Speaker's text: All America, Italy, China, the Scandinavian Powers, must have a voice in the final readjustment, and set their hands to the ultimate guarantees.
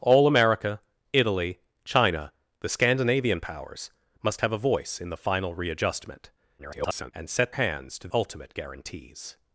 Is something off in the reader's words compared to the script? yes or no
yes